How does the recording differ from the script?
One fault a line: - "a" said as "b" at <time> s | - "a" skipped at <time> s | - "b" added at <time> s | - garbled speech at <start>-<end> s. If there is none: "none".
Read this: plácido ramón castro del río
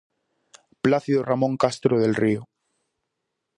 none